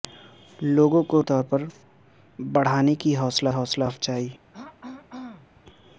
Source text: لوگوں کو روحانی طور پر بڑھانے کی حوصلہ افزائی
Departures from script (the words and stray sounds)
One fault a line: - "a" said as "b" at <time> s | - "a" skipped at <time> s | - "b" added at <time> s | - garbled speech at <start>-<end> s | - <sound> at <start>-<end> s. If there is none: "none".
- "روحانی" skipped at 1.2 s
- "حوصلہ" added at 3.5 s
- throat clearing at 4.5-5.6 s